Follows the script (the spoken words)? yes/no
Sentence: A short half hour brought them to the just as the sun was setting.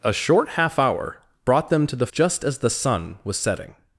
yes